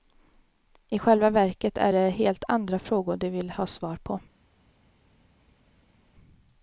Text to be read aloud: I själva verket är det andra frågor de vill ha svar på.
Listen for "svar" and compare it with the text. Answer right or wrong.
right